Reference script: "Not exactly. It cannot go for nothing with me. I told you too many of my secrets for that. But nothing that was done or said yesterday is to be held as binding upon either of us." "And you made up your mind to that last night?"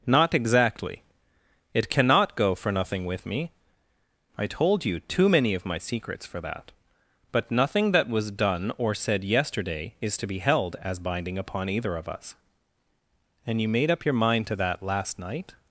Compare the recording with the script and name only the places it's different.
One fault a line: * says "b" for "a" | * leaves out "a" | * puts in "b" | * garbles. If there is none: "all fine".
all fine